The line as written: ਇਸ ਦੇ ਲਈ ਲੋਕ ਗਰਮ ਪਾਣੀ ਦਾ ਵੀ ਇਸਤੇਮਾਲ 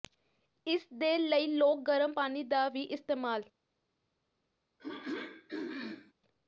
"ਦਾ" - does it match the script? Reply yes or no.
yes